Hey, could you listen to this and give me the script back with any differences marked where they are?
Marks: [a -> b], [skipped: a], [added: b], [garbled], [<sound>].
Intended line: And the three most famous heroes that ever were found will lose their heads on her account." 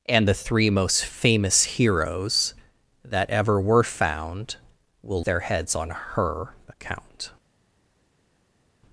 And the three most famous heroes that ever were found will [skipped: lose] their heads on her account."